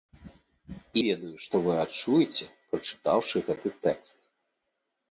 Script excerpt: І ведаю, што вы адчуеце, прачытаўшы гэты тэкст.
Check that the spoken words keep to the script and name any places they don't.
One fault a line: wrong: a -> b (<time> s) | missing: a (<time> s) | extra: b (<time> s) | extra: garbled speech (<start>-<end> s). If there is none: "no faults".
no faults